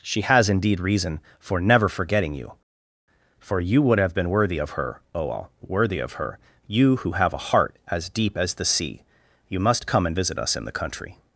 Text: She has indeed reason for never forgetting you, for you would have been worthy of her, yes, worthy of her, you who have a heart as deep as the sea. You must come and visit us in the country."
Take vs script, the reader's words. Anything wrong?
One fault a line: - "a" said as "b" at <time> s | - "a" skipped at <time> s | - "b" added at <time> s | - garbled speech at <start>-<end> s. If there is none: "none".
- "yes" said as "oal" at 5.1 s